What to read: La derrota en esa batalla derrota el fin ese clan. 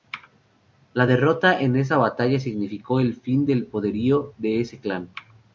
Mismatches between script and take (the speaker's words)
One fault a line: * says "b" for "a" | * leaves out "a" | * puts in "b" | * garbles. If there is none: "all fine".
* says "significó" for "derrota"
* puts in "del poderío de"